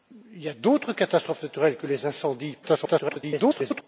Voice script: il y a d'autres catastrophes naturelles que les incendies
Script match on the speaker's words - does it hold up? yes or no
no